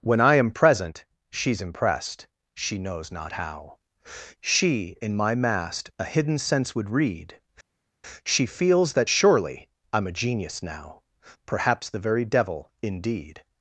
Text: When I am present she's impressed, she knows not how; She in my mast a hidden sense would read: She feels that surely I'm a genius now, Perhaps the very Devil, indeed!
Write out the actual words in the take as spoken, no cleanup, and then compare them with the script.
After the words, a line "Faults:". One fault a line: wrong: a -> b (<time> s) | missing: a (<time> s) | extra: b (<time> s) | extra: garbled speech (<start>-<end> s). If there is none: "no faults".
When I am present she's impressed, she knows not how; She in my mast a hidden sense would read: She feels that surely I'm a genius now, Perhaps the very Devil, indeed!
Faults:
no faults